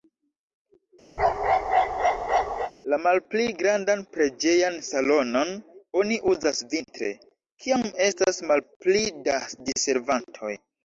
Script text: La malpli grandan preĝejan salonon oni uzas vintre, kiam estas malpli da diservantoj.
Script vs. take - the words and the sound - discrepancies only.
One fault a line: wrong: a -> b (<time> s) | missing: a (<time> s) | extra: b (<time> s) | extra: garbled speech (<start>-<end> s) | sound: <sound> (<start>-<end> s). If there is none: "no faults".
sound: bark (1.2-2.7 s)